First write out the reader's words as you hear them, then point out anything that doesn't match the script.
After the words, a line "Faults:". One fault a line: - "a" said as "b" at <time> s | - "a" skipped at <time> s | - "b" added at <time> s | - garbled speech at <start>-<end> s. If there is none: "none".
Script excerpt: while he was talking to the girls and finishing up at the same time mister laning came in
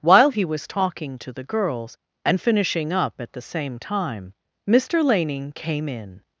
while he was talking to the girls and finishing up at the same time mister laning came in
Faults:
none